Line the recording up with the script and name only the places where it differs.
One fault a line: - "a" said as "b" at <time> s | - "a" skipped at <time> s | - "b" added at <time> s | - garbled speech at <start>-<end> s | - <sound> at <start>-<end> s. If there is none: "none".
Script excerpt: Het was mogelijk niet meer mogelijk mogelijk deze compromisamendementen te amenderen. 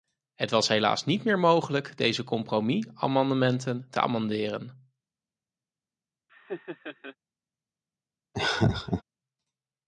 - "mogelijk" said as "helaas" at 0.7 s
- "mogelijk" skipped at 2.0 s
- laugh at 6.3-7.2 s
- laugh at 8.3-9.0 s